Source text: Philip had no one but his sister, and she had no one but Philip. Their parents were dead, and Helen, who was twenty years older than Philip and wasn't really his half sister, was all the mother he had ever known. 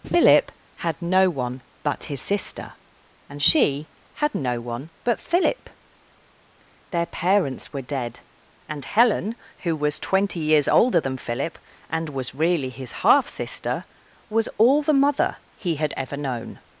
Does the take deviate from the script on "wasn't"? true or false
true